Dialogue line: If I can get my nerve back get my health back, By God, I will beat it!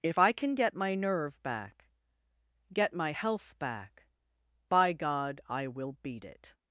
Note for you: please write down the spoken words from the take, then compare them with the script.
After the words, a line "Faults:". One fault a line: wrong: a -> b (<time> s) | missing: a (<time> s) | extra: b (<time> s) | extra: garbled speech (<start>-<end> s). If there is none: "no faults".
If I can get my nerve back get my health back, By God, I will beat it!
Faults:
no faults